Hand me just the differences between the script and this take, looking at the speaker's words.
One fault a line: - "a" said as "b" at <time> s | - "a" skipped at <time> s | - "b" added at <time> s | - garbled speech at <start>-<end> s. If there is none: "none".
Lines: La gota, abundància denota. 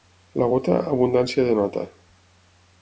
none